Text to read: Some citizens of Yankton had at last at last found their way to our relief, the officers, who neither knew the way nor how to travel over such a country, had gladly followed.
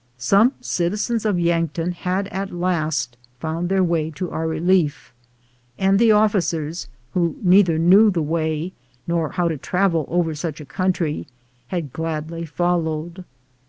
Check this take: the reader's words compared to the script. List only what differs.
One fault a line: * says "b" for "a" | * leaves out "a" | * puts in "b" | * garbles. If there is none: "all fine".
* leaves out "at last"
* puts in "and"